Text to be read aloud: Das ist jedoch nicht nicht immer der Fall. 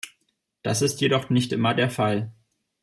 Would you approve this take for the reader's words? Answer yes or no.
no